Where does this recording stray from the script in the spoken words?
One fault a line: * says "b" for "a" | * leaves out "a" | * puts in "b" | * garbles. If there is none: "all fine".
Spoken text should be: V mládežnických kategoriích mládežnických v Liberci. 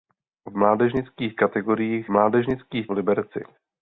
all fine